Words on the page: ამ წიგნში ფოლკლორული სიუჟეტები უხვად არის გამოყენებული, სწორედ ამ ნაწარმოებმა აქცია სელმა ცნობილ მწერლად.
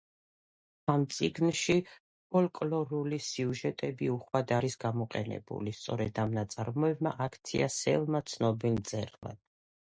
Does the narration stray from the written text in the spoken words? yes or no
no